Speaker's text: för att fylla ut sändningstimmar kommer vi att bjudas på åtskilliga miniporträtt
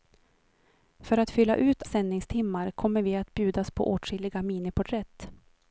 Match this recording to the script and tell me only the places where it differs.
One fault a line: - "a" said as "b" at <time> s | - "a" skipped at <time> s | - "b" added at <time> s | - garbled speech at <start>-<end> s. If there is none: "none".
none